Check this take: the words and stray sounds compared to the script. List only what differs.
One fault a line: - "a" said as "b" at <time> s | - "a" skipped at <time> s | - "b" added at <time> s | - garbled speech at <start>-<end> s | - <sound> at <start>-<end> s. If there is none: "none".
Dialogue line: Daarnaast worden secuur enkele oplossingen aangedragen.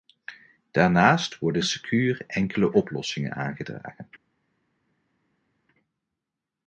none